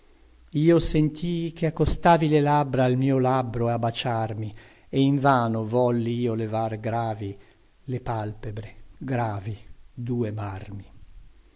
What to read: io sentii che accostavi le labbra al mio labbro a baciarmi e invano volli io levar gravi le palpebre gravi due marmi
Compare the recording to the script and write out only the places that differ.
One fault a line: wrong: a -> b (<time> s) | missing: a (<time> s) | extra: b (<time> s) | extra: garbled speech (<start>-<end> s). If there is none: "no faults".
no faults